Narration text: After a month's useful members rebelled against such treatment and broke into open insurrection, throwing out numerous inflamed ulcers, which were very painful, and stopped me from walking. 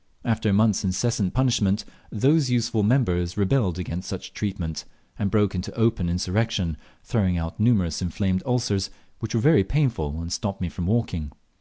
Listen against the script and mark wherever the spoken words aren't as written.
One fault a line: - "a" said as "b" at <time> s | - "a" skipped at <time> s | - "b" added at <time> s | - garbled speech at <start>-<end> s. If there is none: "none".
- "incessant punishment those" added at 0.8 s